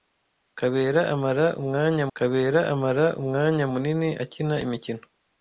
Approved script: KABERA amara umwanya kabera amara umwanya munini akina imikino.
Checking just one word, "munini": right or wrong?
right